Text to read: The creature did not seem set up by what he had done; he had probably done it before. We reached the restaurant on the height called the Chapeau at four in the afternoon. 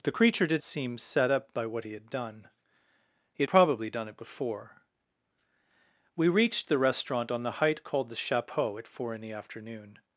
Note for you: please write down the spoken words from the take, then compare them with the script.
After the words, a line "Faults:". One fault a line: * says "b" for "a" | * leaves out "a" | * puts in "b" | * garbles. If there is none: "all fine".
The creature did seem set up by what he had done; he probably done it before. We reached the restaurant on the height called the Chapeau at four in the afternoon.
Faults:
* leaves out "not"
* leaves out "had"